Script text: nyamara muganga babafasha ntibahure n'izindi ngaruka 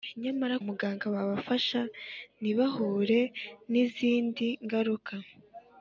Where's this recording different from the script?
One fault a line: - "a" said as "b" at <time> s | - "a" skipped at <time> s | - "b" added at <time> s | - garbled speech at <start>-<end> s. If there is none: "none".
none